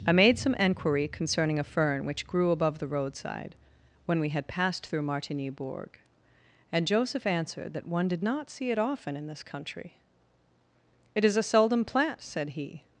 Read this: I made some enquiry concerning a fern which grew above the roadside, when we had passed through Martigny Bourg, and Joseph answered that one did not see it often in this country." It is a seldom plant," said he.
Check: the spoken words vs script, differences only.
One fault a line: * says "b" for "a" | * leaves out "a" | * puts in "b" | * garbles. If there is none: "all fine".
all fine